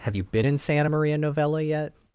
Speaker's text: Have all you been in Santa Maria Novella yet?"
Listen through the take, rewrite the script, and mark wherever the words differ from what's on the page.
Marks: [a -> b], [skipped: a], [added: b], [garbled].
Have [skipped: all] you been in Santa Maria Novella yet?"